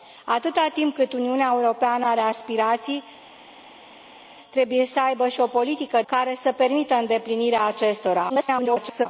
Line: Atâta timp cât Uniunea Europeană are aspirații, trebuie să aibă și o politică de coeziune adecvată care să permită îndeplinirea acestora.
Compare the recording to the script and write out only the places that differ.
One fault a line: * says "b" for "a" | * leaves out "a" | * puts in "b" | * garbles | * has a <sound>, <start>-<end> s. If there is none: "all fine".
* leaves out "de coeziune adecvată"
* garbles